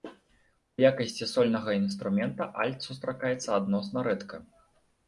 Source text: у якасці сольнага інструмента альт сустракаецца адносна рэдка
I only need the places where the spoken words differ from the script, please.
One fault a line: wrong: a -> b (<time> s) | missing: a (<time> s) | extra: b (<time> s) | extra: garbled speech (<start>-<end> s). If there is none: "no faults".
no faults